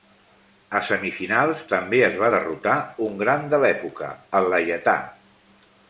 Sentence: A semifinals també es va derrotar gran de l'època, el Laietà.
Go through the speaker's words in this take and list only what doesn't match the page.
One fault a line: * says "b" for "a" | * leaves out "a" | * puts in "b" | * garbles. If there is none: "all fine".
* puts in "un"